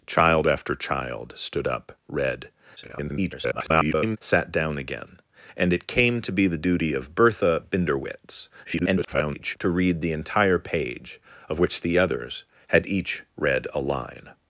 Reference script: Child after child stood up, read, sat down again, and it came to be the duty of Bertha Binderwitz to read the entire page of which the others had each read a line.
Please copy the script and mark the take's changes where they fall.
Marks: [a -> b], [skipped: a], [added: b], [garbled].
Child after child stood up, read, [garbled] sat down again, and it came to be the duty of Bertha Binderwitz [garbled] to read the entire page of which the others had each read a line.